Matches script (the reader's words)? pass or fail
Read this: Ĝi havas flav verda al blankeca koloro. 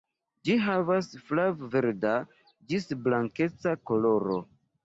fail